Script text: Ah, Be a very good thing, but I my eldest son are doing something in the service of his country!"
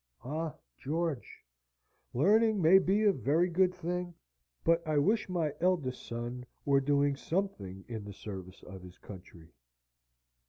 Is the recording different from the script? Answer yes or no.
yes